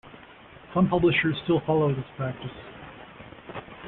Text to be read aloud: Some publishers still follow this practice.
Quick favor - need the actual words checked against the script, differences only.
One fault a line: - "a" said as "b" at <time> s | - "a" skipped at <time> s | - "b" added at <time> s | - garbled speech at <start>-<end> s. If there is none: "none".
none